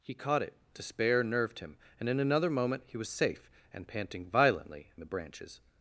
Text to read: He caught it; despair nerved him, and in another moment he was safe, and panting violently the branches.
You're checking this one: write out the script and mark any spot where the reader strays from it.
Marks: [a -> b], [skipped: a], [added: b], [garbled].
He caught it; despair nerved him, and in another moment he was safe, and panting violently the branches.